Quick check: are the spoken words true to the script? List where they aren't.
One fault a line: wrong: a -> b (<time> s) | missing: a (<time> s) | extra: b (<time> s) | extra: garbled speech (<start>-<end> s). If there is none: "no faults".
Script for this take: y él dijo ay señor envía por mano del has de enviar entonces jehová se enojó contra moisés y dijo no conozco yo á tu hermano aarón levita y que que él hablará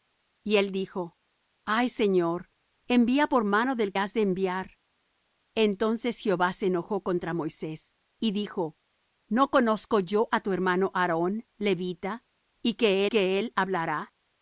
no faults